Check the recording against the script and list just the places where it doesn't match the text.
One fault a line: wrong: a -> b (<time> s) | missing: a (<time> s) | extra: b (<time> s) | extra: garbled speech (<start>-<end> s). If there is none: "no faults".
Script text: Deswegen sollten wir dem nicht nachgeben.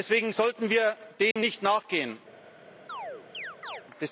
no faults